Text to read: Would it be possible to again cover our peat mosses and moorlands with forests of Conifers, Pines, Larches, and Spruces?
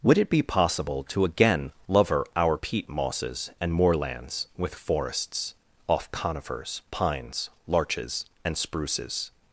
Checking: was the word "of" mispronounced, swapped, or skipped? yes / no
yes